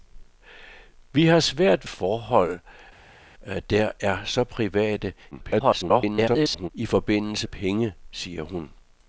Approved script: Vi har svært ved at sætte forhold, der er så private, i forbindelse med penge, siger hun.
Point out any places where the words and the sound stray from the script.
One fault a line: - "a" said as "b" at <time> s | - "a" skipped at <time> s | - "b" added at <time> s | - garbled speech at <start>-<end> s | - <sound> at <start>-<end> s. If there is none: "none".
- "ved at sætte" skipped at 1.9 s
- garbled speech at 5.3-6.7 s
- "med" skipped at 7.5 s